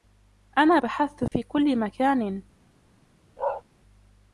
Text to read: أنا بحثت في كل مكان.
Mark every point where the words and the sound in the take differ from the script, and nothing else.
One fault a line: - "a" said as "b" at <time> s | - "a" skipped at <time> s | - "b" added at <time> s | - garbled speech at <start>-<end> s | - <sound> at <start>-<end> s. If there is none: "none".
- dropout at 1.3-1.3 s
- bark at 3.4-3.6 s